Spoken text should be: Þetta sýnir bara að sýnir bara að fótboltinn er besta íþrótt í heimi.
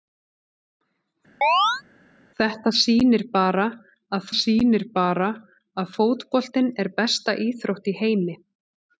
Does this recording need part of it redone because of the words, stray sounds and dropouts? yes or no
yes